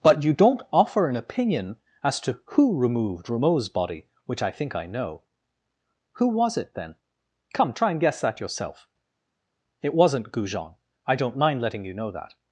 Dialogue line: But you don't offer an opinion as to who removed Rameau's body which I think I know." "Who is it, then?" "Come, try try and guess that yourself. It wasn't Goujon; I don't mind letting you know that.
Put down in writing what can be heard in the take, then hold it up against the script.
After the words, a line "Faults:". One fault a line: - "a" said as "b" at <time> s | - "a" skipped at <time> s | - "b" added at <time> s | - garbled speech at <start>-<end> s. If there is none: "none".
But you don't offer an opinion as to who removed Rameau's body which I think I know." "Who was it, then?" "Come, try and guess that yourself. It wasn't Goujon; I don't mind letting you know that.
Faults:
- "is" said as "was" at 6.3 s
- "try" skipped at 7.9 s